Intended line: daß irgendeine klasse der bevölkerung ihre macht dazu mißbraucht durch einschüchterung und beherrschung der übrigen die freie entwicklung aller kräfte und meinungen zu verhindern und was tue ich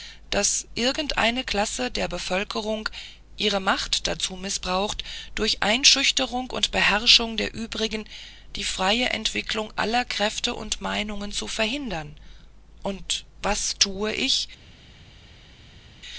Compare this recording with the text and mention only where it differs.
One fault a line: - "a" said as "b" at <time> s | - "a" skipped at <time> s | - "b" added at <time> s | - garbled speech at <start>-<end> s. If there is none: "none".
none